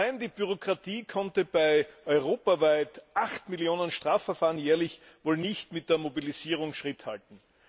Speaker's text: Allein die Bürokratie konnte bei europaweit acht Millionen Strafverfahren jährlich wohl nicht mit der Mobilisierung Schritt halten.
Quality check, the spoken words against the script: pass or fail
pass